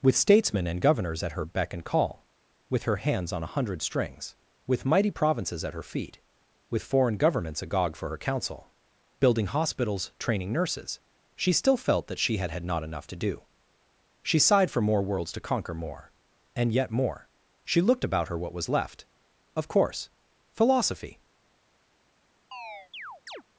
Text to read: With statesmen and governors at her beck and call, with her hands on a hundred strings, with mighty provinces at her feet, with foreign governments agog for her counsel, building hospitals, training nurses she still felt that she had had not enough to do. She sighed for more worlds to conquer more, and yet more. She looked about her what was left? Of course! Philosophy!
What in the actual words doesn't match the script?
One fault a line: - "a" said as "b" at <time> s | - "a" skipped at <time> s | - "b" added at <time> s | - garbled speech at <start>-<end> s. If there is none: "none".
none